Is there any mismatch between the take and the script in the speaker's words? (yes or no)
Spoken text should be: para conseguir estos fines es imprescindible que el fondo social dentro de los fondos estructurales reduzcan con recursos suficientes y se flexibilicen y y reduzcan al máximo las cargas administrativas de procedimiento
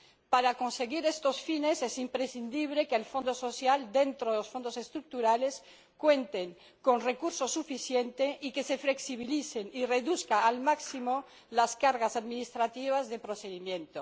yes